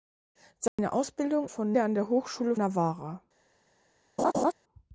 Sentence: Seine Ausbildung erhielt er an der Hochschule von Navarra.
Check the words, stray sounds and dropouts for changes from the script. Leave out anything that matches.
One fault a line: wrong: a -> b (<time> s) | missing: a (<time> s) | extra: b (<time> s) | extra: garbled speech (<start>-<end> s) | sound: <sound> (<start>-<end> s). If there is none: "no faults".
sound: dropout (0.7-0.8 s)
wrong: erhielt -> von (1.5 s)
missing: von (2.6 s)
sound: laugh (4.2-4.5 s)